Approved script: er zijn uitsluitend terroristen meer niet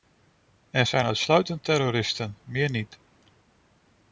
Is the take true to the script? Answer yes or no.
yes